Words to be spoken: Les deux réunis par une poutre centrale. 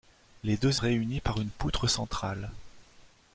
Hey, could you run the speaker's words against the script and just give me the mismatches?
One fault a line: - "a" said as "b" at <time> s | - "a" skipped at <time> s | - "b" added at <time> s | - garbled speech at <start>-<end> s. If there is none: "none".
none